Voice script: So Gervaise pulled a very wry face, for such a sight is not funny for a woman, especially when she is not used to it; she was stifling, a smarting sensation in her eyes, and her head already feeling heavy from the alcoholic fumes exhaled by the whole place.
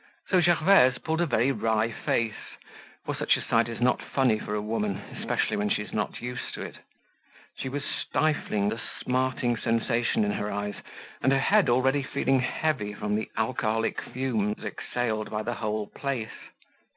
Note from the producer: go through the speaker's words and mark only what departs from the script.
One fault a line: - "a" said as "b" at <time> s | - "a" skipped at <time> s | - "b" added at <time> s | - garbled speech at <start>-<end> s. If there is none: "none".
none